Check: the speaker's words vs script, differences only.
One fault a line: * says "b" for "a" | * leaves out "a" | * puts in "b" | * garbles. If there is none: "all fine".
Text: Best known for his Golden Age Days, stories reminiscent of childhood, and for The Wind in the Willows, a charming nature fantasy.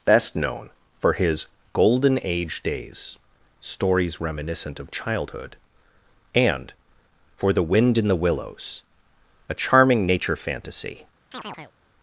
all fine